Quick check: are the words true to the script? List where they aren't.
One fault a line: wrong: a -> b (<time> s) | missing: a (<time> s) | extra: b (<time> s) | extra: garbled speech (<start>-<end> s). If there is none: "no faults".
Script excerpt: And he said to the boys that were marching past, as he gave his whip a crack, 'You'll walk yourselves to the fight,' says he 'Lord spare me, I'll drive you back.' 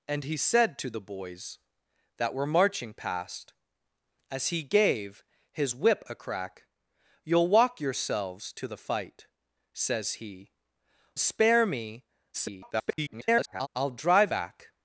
missing: Lord (10.5 s)
extra: garbled speech (12.3-13.7 s)
missing: you (14.3 s)